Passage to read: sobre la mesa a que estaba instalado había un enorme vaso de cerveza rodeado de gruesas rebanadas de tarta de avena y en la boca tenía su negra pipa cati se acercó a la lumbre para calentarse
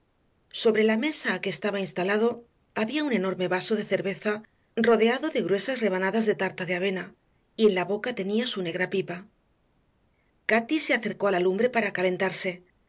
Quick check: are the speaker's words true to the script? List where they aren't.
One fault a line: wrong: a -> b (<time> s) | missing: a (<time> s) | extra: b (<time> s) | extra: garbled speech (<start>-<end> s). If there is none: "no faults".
no faults